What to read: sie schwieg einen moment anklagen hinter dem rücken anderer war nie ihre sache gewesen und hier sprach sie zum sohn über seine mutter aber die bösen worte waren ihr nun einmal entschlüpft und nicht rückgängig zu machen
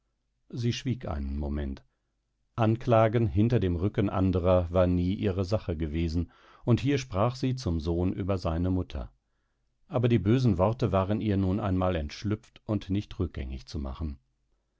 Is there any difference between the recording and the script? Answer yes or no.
no